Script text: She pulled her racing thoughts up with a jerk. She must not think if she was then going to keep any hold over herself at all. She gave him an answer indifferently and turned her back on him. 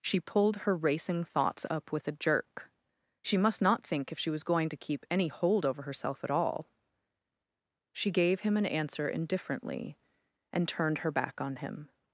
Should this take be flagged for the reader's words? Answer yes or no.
yes